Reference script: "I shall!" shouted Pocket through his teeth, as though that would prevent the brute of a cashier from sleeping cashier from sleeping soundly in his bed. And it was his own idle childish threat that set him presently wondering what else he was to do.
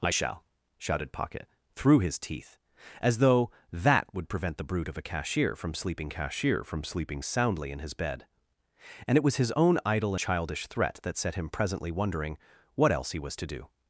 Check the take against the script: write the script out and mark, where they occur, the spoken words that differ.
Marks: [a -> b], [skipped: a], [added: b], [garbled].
"I shall!" shouted Pocket through his teeth, as though that would prevent the brute of a cashier from sleeping cashier from sleeping soundly in his bed. And it was his own idle childish threat that set him presently wondering what else he was to do.